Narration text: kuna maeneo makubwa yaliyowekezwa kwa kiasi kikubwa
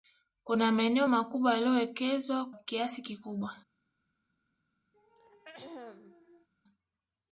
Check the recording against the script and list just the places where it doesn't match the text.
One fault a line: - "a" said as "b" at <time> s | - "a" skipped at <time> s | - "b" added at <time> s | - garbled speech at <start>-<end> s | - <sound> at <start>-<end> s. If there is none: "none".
- "kwa" skipped at 2.5 s
- throat clearing at 4.9-6.5 s